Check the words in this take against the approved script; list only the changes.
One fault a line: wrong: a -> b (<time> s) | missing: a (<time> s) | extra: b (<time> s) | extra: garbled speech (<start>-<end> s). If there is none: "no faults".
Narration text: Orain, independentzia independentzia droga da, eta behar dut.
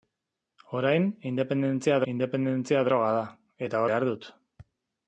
no faults